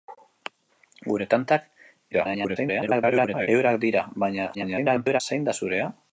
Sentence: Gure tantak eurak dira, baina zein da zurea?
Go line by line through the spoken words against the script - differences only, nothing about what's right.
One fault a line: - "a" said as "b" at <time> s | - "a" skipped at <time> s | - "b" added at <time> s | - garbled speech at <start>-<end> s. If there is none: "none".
- garbled speech at 2.1-3.5 s
- garbled speech at 4.5-5.2 s